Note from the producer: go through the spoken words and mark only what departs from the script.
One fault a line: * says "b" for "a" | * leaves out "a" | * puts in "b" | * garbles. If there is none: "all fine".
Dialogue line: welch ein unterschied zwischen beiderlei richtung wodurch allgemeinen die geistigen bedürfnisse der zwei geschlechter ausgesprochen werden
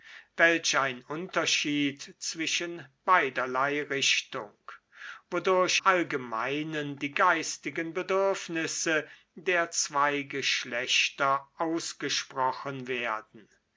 all fine